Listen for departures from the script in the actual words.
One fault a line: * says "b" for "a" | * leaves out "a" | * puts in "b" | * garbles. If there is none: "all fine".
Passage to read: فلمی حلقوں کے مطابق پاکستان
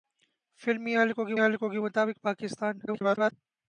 * puts in "حلقوں کے"
* garbles